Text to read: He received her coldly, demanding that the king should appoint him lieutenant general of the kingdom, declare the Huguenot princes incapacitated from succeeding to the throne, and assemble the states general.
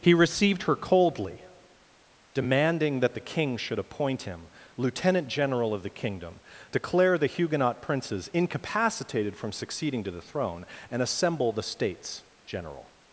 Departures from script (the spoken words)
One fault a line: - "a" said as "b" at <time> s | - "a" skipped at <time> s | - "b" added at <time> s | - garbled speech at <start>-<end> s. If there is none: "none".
none